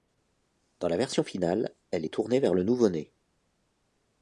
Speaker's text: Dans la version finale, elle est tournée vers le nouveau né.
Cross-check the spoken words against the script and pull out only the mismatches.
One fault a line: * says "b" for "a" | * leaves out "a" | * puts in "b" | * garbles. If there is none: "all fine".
all fine